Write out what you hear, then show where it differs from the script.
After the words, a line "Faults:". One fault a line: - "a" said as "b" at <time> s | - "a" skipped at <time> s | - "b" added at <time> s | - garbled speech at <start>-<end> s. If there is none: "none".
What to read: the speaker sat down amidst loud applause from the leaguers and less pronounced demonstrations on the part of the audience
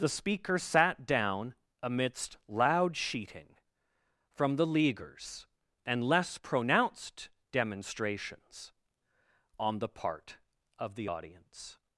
the speaker sat down amidst loud sheeting from the leaguers and less pronounced demonstrations on the part of the audience
Faults:
- "applause" said as "sheeting" at 3.0 s